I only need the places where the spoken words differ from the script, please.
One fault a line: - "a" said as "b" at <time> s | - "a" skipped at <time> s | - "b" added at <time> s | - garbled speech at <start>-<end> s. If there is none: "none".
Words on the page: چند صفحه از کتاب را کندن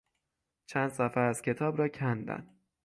none